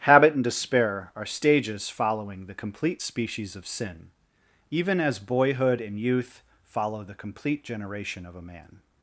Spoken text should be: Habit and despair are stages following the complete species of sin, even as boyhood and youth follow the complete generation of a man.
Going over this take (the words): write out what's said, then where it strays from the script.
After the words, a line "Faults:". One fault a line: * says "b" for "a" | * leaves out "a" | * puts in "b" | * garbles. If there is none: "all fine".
Habit and despair are stages following the complete species of sin, even as boyhood and youth follow the complete generation of a man.
Faults:
all fine